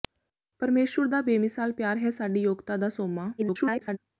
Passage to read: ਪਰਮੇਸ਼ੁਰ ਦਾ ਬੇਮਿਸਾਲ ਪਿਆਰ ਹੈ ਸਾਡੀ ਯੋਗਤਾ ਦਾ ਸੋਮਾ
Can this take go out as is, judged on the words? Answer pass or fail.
fail